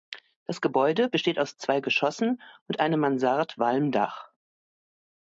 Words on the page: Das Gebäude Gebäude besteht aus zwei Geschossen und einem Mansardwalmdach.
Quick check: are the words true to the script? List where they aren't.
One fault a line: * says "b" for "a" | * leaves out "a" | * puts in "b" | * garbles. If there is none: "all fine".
* leaves out "Gebäude"